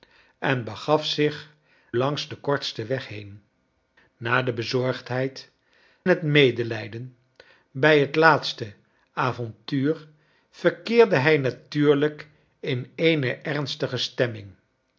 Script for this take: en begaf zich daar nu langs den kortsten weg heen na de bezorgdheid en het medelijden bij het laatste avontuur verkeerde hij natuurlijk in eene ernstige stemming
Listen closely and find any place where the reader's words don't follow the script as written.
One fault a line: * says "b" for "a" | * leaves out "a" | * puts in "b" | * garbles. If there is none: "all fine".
* leaves out "daar nu"
* leaves out "en"